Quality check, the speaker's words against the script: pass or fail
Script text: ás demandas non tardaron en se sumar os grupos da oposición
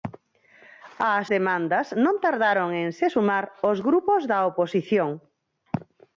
pass